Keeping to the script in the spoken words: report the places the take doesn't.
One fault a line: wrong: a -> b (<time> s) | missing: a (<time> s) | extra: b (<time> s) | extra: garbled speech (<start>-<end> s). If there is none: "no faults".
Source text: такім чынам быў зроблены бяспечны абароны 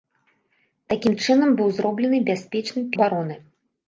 no faults